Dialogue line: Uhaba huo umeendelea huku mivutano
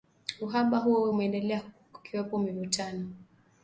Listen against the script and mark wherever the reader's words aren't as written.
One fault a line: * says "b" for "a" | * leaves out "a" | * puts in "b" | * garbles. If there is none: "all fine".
* puts in "kukiwepo"